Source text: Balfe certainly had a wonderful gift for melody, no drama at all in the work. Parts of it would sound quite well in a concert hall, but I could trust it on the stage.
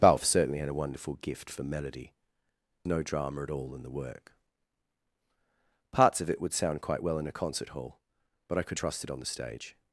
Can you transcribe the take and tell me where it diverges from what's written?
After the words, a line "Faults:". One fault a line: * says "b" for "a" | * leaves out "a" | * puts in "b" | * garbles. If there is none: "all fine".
Balfe certainly had a wonderful gift for melody, no drama at all in the work. Parts of it would sound quite well in a concert hall, but I could trust it on the stage.
Faults:
all fine